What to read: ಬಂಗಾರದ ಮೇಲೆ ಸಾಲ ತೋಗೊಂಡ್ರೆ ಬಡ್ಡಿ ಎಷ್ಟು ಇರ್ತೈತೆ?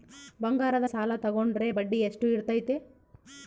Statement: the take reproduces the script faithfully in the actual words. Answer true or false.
false